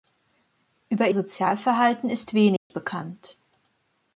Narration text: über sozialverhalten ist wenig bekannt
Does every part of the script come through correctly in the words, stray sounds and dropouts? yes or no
no